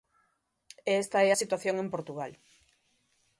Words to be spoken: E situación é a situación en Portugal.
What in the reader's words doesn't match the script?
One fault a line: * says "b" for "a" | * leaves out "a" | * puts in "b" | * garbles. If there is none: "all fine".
* says "esta" for "situación"